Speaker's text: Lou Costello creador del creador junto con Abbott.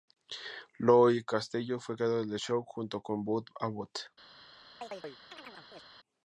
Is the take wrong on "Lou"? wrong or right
right